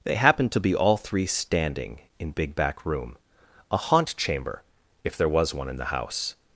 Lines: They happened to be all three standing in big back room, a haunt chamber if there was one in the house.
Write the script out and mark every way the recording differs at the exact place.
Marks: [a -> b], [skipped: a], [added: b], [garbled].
They happened to be all three standing in big back room, a haunt chamber if there was one in the house.